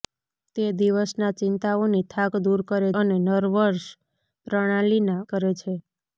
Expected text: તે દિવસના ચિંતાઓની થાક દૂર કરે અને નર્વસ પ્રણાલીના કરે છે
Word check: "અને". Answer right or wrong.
right